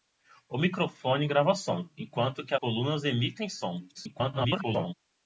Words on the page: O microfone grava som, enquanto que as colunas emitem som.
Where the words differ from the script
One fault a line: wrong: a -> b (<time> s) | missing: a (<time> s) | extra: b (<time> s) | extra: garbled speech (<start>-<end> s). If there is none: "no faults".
missing: as (2.5 s)
extra: garbled speech (3.9-4.9 s)